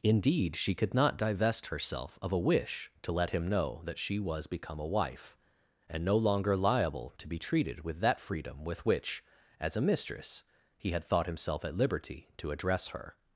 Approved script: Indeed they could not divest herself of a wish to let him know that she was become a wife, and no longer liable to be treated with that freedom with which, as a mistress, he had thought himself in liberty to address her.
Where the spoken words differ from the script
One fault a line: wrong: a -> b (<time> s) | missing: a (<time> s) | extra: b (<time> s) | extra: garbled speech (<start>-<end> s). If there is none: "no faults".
wrong: they -> she (0.6 s)
wrong: in -> at (11.6 s)